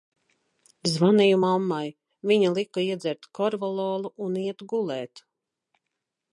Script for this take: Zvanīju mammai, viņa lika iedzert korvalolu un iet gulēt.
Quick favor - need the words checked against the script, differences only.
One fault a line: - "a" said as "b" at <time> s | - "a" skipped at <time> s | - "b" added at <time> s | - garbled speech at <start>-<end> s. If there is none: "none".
none